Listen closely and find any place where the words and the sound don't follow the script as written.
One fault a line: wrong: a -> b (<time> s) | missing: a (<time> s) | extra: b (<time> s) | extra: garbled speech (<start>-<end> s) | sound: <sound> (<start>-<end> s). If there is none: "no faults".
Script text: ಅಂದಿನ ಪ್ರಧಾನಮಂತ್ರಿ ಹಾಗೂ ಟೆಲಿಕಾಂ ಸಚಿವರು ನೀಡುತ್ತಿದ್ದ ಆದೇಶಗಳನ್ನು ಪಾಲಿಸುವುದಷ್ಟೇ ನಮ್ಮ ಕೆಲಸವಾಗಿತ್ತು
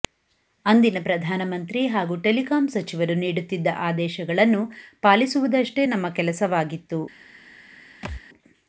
sound: thud (8.0-8.2 s)